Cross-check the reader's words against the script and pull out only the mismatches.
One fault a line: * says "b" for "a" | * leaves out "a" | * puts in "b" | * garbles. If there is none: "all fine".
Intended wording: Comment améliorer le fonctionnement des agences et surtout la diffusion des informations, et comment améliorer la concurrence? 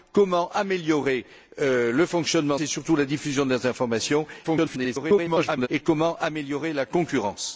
* leaves out "des agences"
* garbles